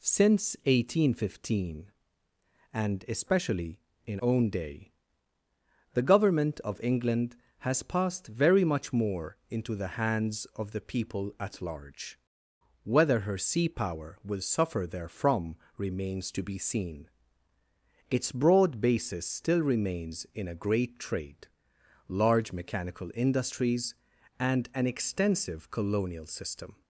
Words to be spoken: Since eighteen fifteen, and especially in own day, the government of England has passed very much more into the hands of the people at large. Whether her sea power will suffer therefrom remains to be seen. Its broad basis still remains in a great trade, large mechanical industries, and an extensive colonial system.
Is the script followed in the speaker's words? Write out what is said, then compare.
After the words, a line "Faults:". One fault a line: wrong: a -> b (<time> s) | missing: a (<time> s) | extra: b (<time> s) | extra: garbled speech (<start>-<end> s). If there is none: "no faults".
Since eighteen fifteen, and especially in own day, the government of England has passed very much more into the hands of the people at large. Whether her sea power will suffer therefrom remains to be seen. Its broad basis still remains in a great trade, large mechanical industries, and an extensive colonial system.
Faults:
no faults